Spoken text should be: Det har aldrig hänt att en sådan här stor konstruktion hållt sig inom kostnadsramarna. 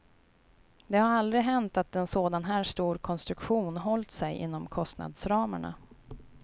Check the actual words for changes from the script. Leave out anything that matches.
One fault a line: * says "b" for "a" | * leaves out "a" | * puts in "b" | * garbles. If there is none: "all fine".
all fine